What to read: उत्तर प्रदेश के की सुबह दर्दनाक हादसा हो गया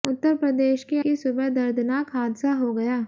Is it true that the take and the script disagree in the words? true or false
false